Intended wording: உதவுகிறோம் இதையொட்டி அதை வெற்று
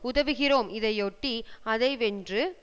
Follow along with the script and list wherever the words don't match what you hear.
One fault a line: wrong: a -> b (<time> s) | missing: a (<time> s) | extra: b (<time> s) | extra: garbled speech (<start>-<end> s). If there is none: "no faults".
no faults